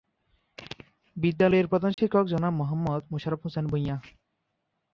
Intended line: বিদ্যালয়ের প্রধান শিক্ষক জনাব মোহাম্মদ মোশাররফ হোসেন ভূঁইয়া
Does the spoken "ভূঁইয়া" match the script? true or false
true